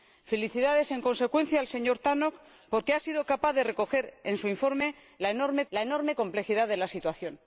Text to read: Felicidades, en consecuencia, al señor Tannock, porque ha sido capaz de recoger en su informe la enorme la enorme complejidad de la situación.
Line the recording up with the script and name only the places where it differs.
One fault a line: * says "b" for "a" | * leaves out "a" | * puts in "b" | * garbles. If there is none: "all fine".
all fine